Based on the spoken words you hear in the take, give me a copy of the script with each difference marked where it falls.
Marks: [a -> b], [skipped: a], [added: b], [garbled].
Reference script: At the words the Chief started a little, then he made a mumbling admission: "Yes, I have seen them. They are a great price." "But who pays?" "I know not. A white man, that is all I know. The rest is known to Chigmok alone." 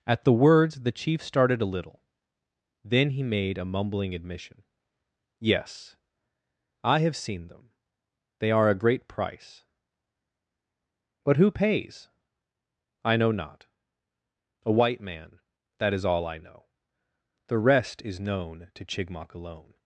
At the words the Chief started a little, then he made a mumbling admission: "Yes, I have seen them. They are a great price." "But who pays?" "I know not. A white man, that is all I know. The rest is known to Chigmok alone."